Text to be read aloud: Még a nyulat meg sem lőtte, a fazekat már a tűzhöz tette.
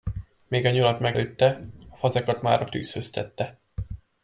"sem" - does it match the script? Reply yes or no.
no